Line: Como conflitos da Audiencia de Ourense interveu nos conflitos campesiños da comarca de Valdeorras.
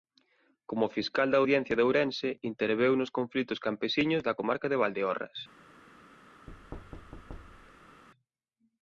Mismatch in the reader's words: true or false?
true